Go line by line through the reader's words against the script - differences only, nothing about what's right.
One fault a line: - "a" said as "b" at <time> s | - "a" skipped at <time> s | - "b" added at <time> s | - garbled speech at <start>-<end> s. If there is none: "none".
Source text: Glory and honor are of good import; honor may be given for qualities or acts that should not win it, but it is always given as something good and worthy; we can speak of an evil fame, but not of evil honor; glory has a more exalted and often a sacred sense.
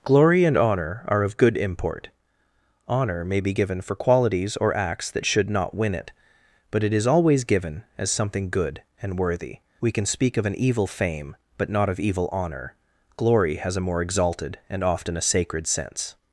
none